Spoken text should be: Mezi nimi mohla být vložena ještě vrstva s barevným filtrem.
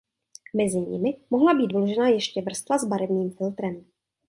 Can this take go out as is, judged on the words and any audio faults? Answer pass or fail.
pass